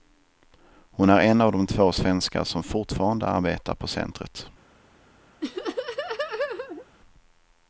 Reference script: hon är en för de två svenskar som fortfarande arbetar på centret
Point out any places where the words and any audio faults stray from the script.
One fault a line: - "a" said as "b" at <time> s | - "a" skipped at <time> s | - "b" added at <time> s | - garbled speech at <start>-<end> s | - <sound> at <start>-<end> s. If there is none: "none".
- "för" said as "av" at 1.4 s
- laugh at 5.4-6.9 s